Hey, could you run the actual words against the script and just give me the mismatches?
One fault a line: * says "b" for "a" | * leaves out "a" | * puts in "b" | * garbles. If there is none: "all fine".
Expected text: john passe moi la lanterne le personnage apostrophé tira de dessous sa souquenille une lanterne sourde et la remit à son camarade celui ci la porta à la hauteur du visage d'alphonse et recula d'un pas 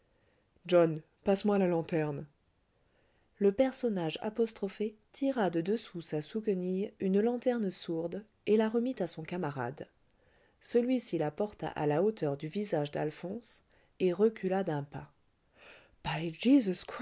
all fine